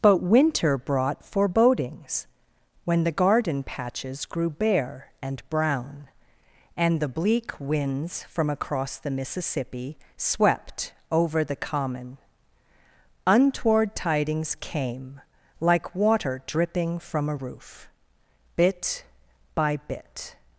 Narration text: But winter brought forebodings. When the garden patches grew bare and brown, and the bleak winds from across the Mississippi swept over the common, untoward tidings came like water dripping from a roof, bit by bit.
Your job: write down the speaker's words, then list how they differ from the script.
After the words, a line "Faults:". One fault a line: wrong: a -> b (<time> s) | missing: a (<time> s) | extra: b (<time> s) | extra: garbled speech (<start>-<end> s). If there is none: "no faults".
But winter brought forebodings. When the garden patches grew bare and brown, and the bleak winds from across the Mississippi swept over the common, untoward tidings came like water dripping from a roof, bit by bit.
Faults:
no faults